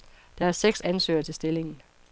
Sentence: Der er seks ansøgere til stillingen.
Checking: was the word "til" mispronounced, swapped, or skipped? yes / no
no